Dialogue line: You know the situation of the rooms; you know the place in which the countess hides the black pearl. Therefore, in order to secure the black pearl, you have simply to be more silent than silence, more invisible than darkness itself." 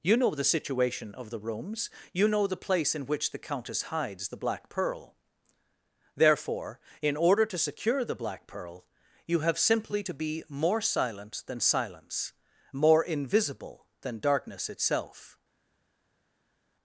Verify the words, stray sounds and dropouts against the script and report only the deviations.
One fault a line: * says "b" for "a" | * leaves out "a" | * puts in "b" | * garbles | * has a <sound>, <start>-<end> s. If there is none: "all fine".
all fine